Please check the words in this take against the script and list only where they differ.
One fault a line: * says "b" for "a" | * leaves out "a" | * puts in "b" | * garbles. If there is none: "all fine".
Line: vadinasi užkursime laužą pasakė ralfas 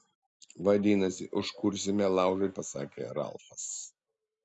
all fine